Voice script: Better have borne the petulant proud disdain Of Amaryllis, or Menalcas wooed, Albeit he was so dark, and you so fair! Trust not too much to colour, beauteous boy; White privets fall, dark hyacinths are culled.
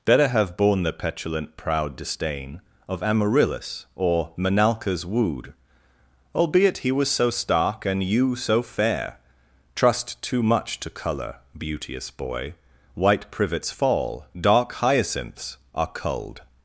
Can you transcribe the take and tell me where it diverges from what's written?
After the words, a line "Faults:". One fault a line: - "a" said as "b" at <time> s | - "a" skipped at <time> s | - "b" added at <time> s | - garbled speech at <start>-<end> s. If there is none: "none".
Better have borne the petulant proud disdain Of Amaryllis, or Menalcas wooed, Albeit he was so stark, and you so fair! Trust too much to colour, beauteous boy; White privets fall, dark hyacinths are culled.
Faults:
- "dark" said as "stark" at 7.3 s
- "not" skipped at 10.2 s